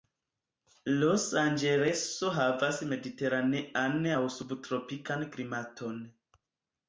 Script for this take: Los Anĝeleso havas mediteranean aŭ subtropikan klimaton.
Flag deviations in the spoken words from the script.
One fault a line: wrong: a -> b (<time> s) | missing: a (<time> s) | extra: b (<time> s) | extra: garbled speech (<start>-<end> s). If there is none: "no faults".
no faults